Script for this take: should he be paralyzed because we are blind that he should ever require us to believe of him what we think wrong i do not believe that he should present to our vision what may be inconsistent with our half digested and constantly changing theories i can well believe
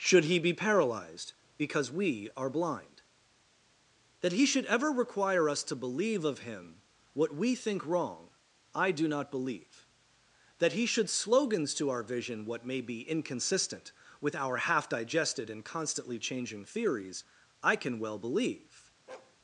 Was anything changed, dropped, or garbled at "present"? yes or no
yes